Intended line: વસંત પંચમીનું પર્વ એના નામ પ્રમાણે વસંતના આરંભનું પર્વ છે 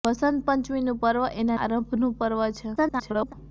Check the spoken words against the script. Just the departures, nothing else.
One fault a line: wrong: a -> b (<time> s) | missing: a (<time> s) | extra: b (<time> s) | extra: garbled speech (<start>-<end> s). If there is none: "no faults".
missing: નામ પ્રમાણે વસંતના (1.6 s)
extra: garbled speech (2.8-3.3 s)